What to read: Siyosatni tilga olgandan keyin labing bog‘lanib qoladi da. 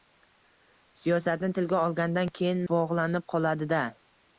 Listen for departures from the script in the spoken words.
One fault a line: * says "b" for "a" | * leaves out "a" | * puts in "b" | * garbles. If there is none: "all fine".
* leaves out "labing"